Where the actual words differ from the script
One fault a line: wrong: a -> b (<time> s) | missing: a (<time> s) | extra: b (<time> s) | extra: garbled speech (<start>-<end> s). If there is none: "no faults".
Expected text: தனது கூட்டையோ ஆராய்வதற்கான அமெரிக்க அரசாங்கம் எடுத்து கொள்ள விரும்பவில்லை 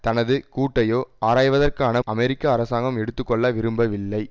no faults